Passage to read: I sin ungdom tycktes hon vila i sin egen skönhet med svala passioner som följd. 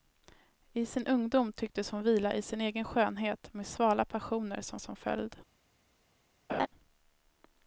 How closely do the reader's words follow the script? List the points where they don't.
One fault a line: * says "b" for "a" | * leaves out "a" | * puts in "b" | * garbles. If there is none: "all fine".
* puts in "som"